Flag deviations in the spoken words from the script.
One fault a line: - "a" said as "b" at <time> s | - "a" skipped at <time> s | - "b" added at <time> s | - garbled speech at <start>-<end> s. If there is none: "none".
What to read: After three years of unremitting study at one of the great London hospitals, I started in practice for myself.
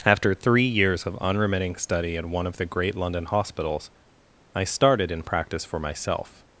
none